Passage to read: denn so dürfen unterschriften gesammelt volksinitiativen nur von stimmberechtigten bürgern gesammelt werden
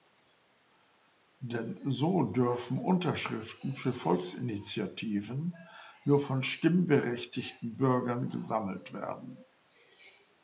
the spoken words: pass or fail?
fail